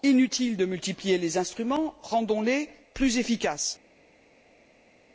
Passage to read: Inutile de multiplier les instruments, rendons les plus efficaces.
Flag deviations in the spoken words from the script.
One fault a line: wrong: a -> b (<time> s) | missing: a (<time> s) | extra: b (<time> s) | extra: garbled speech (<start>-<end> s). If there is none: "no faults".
no faults